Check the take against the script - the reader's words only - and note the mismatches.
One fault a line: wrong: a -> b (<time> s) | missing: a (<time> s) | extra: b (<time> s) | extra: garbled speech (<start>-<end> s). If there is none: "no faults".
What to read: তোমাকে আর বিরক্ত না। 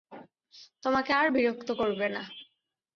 extra: করবে (1.7 s)